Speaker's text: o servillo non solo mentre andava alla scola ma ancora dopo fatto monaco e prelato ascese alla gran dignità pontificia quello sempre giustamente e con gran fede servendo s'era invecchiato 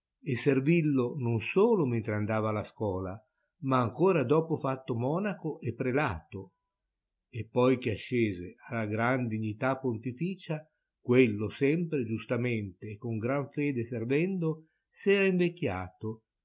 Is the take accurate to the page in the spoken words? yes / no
no